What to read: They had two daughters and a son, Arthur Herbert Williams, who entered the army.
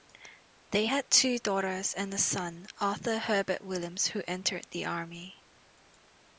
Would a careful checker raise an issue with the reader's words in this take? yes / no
no